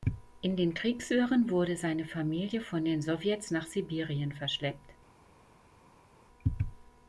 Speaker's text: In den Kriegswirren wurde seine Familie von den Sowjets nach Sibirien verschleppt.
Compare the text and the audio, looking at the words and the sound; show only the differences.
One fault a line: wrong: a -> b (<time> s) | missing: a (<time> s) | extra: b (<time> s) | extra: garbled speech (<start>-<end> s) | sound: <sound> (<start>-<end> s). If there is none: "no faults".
no faults